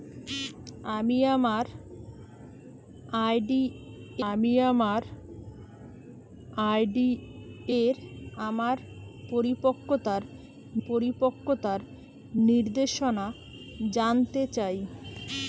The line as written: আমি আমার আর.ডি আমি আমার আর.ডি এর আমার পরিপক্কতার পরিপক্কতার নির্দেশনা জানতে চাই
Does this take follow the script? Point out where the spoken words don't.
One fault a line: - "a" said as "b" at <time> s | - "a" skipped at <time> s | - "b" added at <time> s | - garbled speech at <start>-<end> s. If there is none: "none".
none